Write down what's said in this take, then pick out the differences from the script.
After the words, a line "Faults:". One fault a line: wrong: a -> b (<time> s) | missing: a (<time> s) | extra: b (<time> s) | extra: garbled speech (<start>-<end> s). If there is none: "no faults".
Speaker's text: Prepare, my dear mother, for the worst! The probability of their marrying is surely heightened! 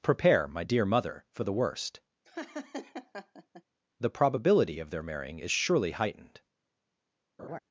Prepare, my dear mother, for the worst! The probability of their marrying is surely heightened!
Faults:
no faults